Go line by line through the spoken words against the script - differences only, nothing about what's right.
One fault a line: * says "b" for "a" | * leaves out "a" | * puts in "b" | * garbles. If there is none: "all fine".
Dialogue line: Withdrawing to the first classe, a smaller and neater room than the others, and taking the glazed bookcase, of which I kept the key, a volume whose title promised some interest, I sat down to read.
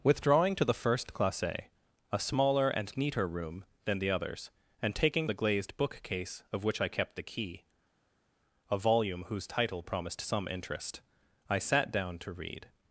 all fine